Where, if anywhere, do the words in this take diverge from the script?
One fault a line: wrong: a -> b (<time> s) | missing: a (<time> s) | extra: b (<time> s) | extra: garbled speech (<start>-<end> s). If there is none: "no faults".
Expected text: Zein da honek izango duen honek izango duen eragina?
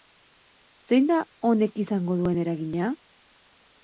missing: honek izango duen (2.4 s)